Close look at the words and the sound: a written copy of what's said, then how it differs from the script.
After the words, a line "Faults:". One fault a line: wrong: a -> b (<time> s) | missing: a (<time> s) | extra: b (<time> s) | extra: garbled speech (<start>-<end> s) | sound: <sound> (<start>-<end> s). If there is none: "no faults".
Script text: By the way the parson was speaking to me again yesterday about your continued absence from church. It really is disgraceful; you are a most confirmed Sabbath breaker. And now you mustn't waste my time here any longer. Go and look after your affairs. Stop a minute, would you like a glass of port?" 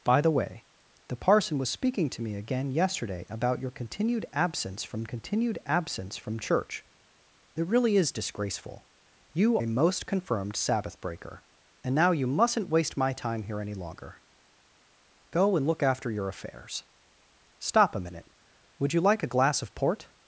By the way the parson was speaking to me again yesterday about your continued absence from continued absence from church. It really is disgraceful; you a most confirmed Sabbath breaker. And now you mustn't waste my time here any longer. Go and look after your affairs. Stop a minute, would you like a glass of port?"
Faults:
extra: continued absence from (5.0 s)
missing: are (9.6 s)